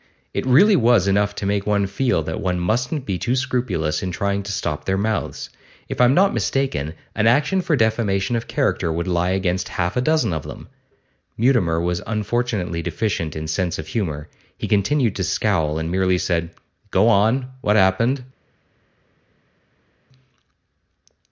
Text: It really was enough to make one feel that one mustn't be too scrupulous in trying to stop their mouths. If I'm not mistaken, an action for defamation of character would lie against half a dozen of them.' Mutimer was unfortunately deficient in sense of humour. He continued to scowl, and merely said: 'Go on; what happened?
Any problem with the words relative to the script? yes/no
no